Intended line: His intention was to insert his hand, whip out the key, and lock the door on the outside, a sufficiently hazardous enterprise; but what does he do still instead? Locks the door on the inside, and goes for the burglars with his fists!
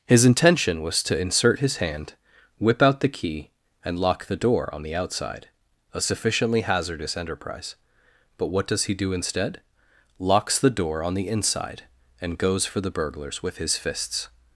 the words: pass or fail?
fail